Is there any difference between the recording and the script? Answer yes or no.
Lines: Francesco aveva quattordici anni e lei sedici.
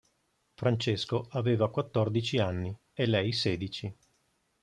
no